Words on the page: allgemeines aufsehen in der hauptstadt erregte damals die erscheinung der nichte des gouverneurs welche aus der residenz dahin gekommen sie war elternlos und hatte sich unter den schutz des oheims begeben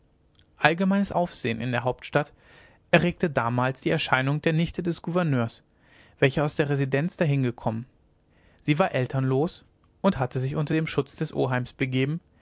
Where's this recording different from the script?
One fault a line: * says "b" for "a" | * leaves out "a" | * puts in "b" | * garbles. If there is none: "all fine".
all fine